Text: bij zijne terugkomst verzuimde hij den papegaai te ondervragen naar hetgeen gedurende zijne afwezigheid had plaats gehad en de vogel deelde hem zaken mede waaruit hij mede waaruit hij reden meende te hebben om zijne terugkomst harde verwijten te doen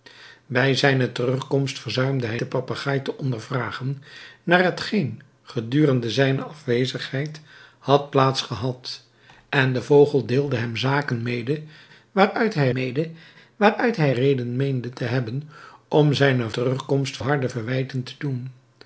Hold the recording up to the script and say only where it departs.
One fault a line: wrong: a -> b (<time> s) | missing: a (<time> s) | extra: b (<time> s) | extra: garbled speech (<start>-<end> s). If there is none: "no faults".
no faults